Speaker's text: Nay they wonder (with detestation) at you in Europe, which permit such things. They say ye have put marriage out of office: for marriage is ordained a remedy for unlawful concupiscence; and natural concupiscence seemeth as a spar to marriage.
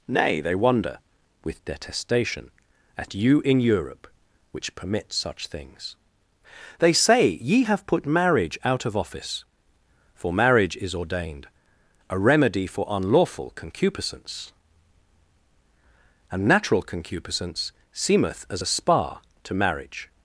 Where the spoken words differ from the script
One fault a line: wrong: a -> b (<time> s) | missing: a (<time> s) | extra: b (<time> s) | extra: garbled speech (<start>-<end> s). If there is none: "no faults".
no faults